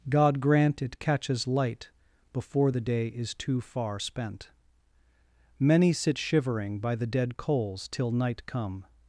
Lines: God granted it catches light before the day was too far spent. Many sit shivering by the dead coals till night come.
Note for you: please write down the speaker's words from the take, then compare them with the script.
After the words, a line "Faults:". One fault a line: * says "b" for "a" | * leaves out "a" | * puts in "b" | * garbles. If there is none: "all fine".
God grant it catches light before the day is too far spent. Many sit shivering by the dead coals till night come.
Faults:
* says "grant" for "granted"
* says "is" for "was"